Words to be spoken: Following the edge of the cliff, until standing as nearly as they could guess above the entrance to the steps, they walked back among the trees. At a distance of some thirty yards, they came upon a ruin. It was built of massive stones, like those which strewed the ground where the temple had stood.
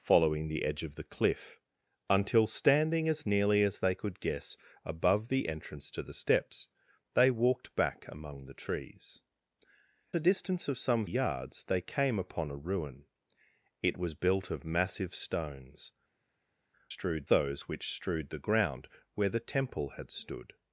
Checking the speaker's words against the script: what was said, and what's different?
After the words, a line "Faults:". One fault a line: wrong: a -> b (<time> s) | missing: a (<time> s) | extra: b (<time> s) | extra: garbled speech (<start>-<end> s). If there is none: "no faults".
Following the edge of the cliff, until standing as nearly as they could guess above the entrance to the steps, they walked back among the trees. A distance of some yards, they came upon a ruin. It was built of massive stones, strewed those which strewed the ground where the temple had stood.
Faults:
missing: At (9.2 s)
missing: thirty (11.1 s)
wrong: like -> strewed (16.9 s)